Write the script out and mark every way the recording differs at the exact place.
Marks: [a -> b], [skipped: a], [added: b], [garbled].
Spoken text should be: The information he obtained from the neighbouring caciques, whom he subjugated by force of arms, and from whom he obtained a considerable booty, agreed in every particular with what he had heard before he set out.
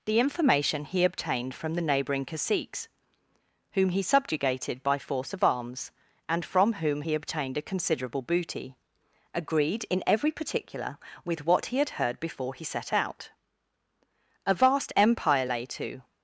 The information he obtained from the neighbouring caciques, whom he subjugated by force of arms, and from whom he obtained a considerable booty, agreed in every particular with what he had heard before he set out. [added: A vast empire lay to]